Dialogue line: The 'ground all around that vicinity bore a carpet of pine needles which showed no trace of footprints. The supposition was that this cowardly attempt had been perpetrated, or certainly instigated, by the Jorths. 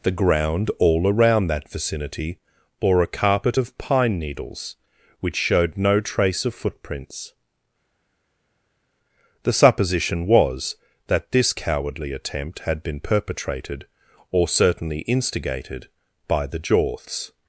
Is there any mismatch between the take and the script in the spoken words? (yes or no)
no